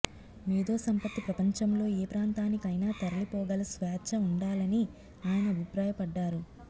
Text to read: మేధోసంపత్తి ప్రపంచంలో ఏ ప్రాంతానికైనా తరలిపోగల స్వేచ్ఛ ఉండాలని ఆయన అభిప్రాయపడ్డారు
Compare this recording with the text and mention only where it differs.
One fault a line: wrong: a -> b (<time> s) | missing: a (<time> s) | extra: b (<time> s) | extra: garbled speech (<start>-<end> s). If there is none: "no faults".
no faults